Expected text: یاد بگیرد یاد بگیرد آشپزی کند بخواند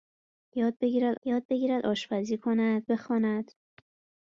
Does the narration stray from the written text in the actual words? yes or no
no